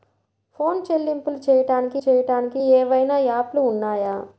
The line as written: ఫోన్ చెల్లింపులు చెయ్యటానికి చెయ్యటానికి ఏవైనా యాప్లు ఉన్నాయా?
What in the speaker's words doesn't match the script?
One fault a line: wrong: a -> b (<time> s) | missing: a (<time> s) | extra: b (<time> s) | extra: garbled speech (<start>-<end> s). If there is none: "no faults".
no faults